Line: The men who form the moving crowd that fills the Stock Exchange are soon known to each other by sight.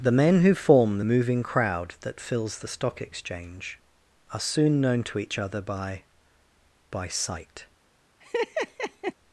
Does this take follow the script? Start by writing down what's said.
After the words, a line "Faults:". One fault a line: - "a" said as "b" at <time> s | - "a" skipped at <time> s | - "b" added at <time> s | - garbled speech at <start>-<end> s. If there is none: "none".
The men who form the moving crowd that fills the Stock Exchange are soon known to each other by by sight.
Faults:
- "by" added at 6.9 s